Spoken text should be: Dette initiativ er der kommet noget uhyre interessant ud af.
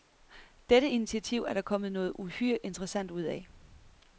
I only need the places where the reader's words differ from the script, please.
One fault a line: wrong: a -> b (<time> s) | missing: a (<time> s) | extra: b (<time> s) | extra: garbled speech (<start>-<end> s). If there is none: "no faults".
no faults